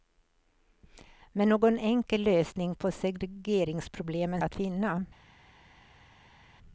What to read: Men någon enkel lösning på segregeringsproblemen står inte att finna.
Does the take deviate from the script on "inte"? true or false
true